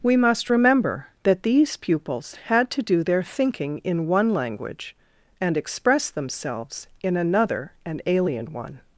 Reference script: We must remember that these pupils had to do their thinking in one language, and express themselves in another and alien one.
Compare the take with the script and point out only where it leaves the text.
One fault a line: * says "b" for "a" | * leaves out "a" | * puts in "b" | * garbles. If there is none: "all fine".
all fine